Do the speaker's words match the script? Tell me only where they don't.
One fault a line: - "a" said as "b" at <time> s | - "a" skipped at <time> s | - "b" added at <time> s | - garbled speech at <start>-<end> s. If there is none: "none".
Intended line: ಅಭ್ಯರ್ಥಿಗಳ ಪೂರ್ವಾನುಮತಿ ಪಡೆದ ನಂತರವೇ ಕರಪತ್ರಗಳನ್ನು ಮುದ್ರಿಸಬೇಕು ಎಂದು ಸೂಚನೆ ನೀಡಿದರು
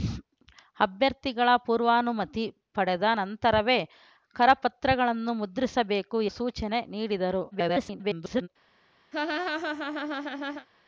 - "ಎಂದು" skipped at 6.2 s
- garbled speech at 7.5-8.5 s